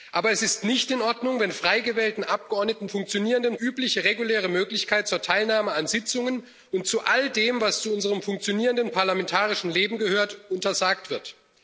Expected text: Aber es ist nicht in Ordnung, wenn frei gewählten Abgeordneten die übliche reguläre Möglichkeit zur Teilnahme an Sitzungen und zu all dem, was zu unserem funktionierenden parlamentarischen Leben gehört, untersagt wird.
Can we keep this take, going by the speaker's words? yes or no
no